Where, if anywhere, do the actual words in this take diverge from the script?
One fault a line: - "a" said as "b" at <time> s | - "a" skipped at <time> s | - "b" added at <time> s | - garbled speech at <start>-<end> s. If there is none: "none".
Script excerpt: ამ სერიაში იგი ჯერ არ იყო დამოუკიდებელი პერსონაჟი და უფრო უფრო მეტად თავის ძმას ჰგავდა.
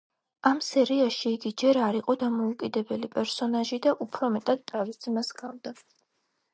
- "უფრო" skipped at 4.3 s